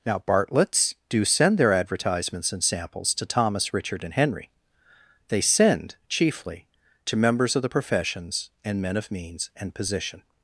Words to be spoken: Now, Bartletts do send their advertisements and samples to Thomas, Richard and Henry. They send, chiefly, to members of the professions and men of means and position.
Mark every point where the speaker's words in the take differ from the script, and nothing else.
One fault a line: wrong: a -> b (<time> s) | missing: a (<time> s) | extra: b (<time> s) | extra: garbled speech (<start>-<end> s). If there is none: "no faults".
no faults